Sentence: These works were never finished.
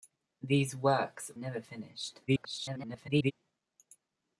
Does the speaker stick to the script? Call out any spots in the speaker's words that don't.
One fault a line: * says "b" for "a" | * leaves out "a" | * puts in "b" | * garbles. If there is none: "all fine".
* leaves out "were"
* garbles